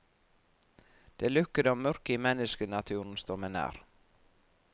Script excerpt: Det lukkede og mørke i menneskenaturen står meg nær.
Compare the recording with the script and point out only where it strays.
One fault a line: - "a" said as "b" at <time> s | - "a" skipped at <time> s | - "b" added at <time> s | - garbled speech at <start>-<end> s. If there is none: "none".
none